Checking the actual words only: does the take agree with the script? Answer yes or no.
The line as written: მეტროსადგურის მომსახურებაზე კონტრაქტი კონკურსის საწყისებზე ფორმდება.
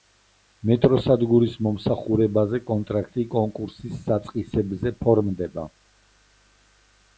yes